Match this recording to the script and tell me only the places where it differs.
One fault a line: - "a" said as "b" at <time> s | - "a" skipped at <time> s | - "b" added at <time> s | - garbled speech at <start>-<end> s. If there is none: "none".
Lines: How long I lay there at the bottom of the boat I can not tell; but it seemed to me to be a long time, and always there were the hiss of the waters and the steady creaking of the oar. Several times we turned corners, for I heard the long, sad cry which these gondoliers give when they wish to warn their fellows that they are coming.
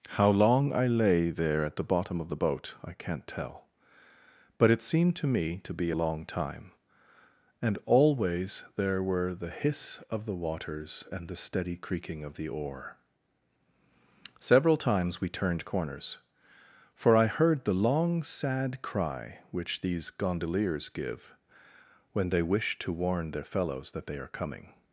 - "a" skipped at 5.9 s